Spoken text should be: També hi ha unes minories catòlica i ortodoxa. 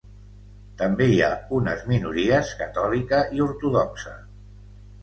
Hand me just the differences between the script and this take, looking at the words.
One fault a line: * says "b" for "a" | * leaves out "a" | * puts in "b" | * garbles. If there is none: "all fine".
all fine